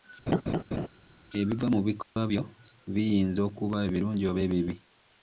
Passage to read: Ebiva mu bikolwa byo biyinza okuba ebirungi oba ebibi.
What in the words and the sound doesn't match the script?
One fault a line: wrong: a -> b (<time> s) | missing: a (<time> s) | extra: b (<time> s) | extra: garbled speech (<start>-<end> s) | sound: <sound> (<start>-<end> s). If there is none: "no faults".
sound: laugh (0.3-0.9 s)
sound: dropout (2.0-2.2 s)